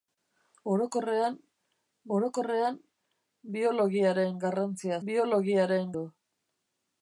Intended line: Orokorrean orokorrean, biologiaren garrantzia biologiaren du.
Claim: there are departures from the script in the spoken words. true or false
false